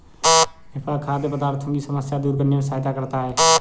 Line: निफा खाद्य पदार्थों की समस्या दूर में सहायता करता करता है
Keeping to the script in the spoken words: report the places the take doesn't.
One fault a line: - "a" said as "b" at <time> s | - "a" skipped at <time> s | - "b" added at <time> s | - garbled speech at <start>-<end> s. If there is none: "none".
- "करने" added at 2.4 s
- "करता" skipped at 3.2 s